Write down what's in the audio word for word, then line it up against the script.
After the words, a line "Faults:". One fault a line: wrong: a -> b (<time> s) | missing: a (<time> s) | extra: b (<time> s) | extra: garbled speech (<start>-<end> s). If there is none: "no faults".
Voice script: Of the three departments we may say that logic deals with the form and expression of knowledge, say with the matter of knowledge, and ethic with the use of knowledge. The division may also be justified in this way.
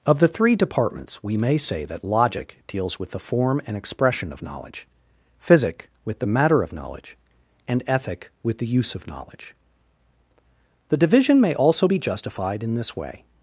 Of the three departments we may say that logic deals with the form and expression of knowledge, physic with the matter of knowledge, and ethic with the use of knowledge. The division may also be justified in this way.
Faults:
wrong: say -> physic (5.4 s)